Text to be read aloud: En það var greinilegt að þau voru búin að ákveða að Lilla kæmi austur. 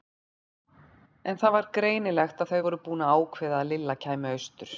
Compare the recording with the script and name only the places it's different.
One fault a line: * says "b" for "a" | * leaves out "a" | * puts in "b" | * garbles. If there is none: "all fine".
all fine